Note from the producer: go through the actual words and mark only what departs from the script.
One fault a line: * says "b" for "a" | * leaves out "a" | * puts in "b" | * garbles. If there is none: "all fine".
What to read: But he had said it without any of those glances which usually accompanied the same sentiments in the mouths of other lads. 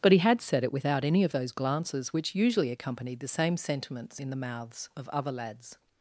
all fine